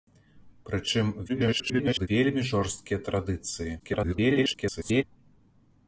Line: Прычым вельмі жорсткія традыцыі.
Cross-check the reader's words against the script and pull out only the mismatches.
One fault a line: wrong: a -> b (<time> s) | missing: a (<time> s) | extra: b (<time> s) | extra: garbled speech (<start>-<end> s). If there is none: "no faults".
extra: garbled speech (1.3-2.1 s)
extra: garbled speech (3.8-5.0 s)